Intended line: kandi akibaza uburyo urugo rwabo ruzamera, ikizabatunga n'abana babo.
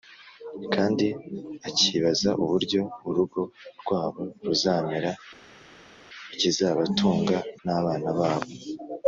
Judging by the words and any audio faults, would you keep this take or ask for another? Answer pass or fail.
pass